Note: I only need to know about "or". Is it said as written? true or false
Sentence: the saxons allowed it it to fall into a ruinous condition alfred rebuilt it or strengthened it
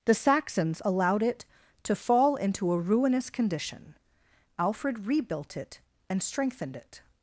false